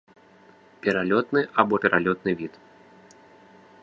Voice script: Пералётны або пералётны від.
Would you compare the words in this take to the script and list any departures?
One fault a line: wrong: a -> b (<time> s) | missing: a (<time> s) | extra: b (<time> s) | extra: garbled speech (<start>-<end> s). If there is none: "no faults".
no faults